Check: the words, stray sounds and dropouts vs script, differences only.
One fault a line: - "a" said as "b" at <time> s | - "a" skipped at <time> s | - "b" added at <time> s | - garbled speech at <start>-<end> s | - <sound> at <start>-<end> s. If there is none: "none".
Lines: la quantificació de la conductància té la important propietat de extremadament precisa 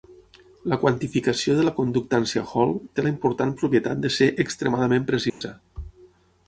- "hall" added at 2.5 s
- "ser" added at 4.2 s
- dropout at 5.3-5.4 s